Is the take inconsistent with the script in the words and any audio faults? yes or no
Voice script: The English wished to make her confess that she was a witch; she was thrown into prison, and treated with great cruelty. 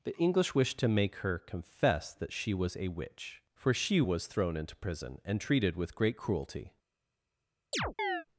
yes